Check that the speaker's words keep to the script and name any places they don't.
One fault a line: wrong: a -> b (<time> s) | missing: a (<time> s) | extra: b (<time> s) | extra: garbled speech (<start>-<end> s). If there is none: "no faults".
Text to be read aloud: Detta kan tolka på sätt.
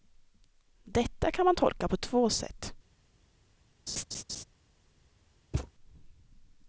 extra: man (1.4 s)
extra: två (2.0 s)